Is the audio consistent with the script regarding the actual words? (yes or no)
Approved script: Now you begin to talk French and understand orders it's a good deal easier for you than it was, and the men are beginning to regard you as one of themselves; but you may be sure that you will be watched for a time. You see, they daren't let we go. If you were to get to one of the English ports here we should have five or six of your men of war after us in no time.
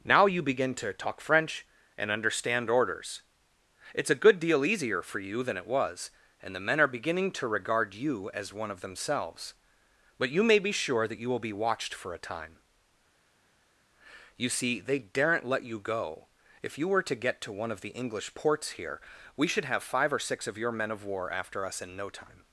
no